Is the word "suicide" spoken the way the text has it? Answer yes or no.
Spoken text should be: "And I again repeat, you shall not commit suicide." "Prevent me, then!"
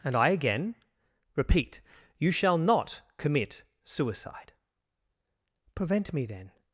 yes